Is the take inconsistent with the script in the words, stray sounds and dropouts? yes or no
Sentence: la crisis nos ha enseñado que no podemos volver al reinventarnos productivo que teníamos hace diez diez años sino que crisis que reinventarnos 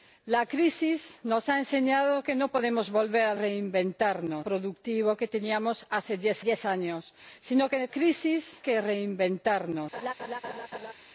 yes